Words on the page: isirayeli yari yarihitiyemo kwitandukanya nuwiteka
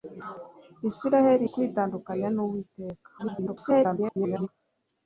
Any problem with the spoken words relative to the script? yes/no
yes